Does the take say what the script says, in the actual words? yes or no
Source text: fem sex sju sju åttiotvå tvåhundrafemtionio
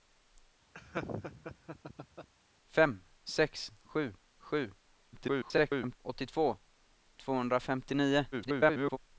no